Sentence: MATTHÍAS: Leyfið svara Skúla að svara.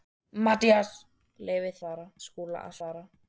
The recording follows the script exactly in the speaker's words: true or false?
true